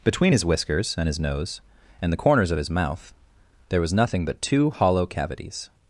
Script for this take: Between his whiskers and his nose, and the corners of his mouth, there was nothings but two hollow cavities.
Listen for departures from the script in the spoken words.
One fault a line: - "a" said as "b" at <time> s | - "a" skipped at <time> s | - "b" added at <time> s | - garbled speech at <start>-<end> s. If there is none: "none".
- "nothings" said as "nothing" at 3.9 s